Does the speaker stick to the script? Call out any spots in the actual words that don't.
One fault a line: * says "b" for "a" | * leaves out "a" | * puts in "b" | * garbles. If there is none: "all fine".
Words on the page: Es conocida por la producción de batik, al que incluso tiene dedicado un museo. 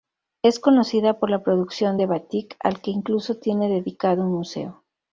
all fine